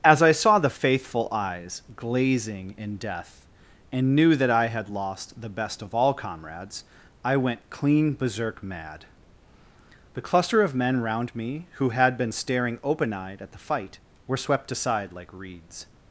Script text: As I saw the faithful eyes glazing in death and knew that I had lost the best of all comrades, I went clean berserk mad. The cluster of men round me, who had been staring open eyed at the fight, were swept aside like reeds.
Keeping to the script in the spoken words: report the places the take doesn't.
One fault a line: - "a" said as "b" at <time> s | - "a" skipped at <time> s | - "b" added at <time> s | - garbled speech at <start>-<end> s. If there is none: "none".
none